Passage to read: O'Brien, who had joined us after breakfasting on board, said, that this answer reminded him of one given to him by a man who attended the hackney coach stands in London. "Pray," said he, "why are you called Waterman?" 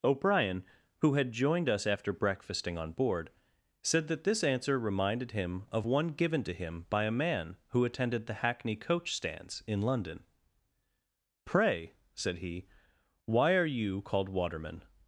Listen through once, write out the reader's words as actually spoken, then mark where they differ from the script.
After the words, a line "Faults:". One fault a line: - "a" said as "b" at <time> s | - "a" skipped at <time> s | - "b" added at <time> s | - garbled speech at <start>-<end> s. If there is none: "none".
O'Brien, who had joined us after breakfasting on board, said, that this answer reminded him of one given to him by a man who attended the hackney coach stands in London. "Pray," said he, "why are you called Waterman?"
Faults:
none